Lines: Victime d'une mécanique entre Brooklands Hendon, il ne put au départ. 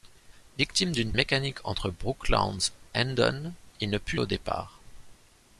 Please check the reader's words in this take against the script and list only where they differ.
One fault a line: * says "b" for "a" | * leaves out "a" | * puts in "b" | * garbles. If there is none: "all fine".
all fine